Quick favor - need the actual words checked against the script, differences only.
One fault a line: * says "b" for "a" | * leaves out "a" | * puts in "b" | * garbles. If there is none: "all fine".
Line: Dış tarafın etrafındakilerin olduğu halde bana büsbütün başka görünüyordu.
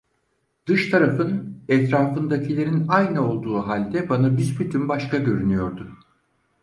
* puts in "aynı"